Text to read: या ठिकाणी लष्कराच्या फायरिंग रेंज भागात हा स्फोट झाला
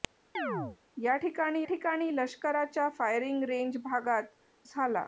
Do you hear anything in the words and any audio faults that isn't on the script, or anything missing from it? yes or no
yes